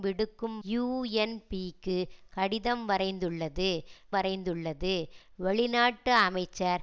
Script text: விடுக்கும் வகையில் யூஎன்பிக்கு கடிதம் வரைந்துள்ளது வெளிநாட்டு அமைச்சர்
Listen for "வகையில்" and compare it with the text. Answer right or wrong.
wrong